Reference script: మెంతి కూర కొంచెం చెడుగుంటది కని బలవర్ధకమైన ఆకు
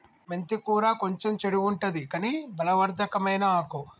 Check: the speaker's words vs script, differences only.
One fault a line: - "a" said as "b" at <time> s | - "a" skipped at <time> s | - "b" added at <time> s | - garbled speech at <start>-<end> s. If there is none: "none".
none